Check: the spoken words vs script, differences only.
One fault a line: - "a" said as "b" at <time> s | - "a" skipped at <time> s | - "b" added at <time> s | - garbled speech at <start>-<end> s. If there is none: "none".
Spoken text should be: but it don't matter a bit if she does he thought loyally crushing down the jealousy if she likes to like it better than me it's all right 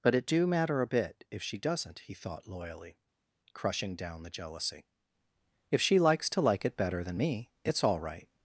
- "don't" said as "do" at 0.2 s
- "does" said as "doesn't" at 1.6 s